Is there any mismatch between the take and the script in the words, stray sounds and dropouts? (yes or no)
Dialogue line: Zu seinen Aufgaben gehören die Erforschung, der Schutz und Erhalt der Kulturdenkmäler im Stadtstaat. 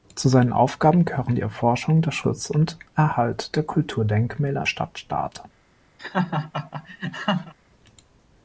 yes